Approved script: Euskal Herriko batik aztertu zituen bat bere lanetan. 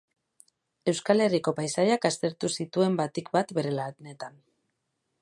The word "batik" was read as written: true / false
false